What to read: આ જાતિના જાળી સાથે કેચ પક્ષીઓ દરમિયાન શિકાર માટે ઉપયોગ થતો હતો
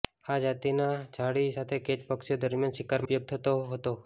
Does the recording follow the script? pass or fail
fail